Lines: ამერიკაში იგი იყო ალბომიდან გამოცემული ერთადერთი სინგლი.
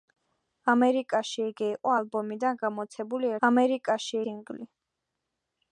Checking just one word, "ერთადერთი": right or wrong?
wrong